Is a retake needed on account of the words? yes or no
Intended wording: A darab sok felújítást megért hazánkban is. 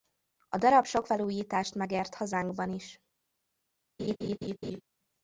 no